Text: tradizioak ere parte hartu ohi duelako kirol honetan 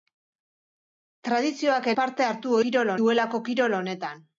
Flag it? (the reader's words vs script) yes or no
yes